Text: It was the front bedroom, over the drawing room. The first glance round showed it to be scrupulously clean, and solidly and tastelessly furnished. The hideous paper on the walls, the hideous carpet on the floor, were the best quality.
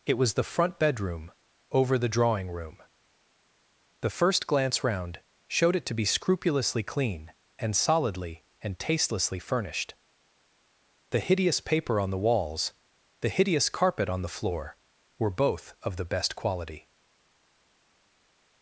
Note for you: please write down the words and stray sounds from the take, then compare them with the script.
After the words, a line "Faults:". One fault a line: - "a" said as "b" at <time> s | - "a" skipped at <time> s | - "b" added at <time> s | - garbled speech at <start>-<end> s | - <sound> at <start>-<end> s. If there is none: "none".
It was the front bedroom, over the drawing room. The first glance round showed it to be scrupulously clean, and solidly and tastelessly furnished. The hideous paper on the walls, the hideous carpet on the floor, were both of the best quality.
Faults:
- "both of" added at 15.3 s